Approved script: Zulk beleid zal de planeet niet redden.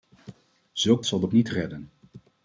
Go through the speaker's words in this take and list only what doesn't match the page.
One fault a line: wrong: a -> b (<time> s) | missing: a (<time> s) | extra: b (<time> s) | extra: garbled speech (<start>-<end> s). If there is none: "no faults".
missing: beleid (1.0 s)
missing: planeet (1.3 s)